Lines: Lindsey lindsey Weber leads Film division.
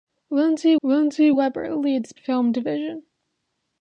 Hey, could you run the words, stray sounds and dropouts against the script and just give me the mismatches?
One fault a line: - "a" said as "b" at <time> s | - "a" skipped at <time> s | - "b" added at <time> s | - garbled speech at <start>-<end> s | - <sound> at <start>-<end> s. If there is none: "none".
none